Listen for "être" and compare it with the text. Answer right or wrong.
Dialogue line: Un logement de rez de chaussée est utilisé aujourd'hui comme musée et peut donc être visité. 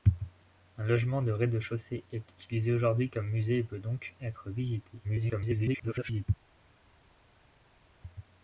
right